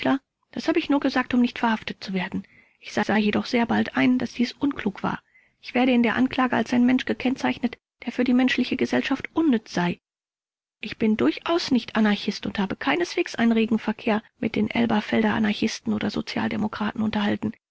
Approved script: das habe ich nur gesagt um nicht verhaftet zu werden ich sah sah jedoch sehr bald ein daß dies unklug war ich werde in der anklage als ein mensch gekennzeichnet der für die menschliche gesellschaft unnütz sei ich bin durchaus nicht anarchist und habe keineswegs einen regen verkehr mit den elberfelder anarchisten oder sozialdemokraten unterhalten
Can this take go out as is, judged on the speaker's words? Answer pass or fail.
pass